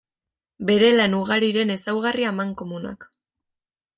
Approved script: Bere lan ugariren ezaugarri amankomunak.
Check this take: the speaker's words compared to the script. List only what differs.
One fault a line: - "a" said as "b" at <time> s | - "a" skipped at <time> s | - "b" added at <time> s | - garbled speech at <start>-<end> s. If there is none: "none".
none